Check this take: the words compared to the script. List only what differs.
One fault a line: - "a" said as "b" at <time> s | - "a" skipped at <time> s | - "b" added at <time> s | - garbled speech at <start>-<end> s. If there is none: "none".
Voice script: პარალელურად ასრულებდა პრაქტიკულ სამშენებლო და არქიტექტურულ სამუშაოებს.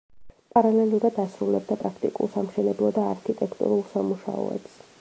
none